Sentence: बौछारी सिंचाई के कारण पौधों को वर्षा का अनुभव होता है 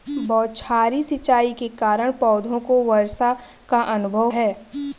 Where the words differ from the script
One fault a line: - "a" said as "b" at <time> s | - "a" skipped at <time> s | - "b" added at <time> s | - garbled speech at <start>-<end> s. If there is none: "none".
- "होता" skipped at 4.3 s